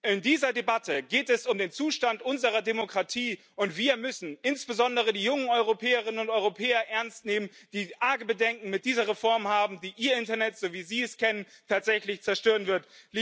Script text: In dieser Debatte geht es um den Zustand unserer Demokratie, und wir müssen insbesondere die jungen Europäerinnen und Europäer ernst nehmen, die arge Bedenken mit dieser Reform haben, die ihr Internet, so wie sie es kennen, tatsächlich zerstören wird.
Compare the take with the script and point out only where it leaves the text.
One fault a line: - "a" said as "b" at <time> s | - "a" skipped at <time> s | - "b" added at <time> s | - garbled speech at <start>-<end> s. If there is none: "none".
none